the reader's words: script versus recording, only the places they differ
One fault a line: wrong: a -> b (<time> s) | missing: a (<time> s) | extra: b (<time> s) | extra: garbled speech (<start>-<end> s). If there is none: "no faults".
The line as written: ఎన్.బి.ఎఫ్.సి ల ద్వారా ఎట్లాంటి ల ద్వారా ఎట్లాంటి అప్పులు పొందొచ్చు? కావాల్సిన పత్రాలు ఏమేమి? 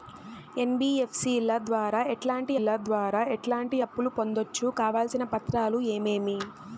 no faults